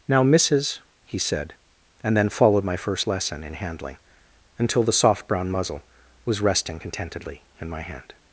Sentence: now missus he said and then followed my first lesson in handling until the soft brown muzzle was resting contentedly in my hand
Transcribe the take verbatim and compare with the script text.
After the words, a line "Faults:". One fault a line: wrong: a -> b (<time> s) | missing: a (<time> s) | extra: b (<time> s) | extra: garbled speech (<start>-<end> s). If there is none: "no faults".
now missus he said and then followed my first lesson in handling until the soft brown muzzle was resting contentedly in my hand
Faults:
no faults